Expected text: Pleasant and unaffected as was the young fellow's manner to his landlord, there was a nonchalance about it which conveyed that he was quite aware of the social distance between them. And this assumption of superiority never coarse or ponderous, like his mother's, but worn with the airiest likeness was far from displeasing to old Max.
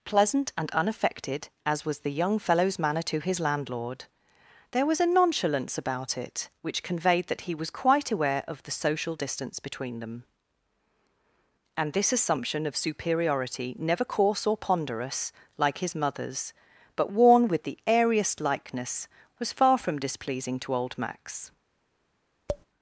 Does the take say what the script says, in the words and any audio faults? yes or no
no